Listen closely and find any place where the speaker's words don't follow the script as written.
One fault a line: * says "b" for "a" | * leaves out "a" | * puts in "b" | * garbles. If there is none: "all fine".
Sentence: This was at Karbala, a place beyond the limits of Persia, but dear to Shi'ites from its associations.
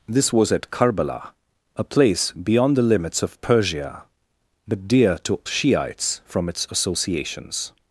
all fine